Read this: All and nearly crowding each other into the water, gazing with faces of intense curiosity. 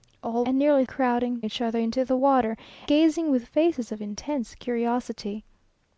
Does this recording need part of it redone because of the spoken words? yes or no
no